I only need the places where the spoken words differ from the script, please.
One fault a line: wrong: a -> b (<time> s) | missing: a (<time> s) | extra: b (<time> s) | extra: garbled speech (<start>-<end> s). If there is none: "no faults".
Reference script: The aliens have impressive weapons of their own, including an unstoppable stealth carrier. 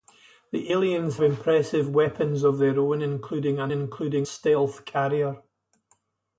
missing: have (1.2 s)
wrong: unstoppable -> including (3.7 s)